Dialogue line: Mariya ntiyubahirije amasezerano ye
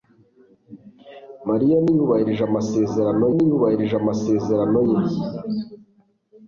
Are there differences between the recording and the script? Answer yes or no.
yes